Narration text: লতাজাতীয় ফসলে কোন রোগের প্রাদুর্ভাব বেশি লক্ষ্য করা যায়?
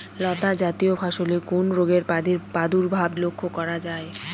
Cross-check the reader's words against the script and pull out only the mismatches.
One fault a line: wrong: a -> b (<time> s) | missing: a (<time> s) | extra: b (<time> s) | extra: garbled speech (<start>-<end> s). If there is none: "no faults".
missing: বেশি (3.1 s)